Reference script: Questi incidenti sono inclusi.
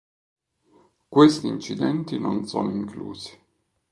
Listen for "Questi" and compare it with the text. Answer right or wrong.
right